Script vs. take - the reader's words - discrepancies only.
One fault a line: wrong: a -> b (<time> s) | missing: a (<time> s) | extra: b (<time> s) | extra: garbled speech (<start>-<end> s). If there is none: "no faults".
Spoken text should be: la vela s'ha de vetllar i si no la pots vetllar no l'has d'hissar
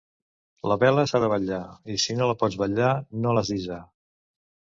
no faults